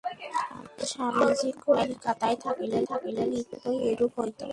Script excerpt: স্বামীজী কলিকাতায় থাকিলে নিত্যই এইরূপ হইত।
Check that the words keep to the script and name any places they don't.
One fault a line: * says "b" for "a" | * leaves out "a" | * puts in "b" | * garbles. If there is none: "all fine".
* puts in "থাকিলে"